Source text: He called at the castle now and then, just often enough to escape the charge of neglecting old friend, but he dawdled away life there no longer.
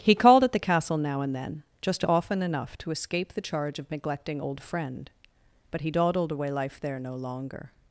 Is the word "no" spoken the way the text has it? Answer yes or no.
yes